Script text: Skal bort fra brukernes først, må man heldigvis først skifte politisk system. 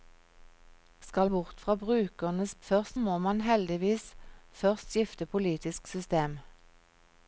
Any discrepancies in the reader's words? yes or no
no